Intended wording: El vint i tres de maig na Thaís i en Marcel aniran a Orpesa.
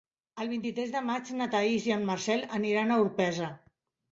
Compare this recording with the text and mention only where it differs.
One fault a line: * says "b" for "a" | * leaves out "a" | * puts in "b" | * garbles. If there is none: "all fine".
all fine